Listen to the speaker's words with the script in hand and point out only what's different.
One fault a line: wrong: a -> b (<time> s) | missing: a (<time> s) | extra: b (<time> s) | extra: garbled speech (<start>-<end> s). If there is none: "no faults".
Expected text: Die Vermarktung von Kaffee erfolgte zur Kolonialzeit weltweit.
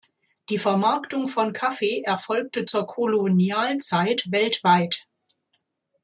no faults